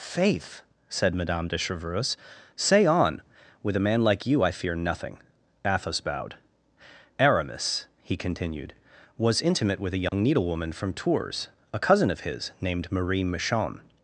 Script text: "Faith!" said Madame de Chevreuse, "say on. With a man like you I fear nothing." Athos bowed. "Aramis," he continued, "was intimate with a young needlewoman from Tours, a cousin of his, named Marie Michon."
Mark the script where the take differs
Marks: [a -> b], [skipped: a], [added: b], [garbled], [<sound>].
"Faith!" said Madame de Chevreuse, "say on. With a man like you I fear nothing." Athos bowed. "Aramis," he continued, "was intimate with a young [dropout] needlewoman from Tours, a cousin of his, named Marie Michon."